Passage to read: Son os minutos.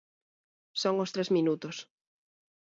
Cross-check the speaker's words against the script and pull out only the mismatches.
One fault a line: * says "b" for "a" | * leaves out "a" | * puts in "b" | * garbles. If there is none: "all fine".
* puts in "tres"